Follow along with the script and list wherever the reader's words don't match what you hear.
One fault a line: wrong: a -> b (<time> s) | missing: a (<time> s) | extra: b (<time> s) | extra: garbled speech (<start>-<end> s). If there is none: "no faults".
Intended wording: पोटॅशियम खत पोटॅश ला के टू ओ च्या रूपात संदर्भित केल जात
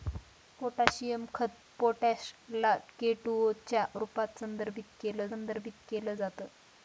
extra: संदर्भित केल (5.3 s)